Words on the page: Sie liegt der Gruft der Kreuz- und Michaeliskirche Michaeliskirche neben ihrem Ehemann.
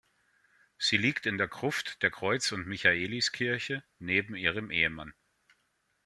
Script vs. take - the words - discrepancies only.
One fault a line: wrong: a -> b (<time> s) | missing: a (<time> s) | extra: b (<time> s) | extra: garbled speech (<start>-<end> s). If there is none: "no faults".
extra: in (1.3 s)
missing: Michaeliskirche (3.8 s)